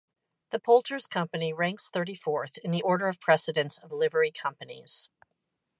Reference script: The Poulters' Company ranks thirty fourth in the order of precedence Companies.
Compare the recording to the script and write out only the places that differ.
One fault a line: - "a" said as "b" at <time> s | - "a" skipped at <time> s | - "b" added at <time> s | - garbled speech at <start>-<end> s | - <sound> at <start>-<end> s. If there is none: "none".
- "of Livery" added at 3.8 s